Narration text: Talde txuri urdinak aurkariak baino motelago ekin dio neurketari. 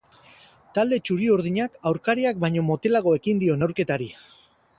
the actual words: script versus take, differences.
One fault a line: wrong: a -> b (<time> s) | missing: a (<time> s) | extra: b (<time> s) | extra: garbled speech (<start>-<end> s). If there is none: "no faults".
no faults